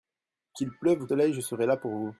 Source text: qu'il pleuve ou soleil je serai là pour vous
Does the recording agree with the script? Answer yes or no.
yes